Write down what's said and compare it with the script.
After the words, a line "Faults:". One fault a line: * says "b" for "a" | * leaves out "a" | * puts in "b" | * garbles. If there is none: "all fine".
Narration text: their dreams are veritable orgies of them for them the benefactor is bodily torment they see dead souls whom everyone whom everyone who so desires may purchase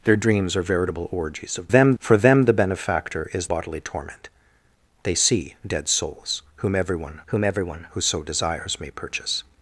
their dreams are veritable orgies of them for them the benefactor is bodily torment they see dead souls whom everyone whom everyone who so desires may purchase
Faults:
all fine